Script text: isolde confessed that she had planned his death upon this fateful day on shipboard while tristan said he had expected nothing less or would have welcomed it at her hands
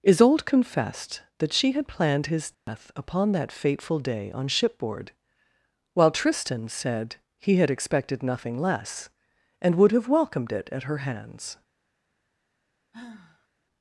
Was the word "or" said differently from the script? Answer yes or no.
yes